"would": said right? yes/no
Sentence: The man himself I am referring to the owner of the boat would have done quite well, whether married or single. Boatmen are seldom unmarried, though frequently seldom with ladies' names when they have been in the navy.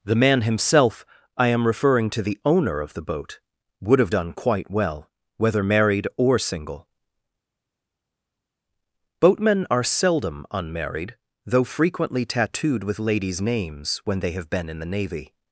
yes